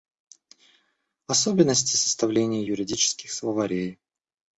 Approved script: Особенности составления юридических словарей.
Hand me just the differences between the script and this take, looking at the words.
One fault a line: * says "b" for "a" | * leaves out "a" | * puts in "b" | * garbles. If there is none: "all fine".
all fine